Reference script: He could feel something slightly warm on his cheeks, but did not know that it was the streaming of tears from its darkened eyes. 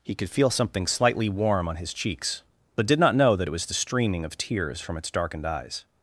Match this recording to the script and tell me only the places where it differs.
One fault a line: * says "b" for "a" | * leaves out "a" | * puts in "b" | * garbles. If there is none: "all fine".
all fine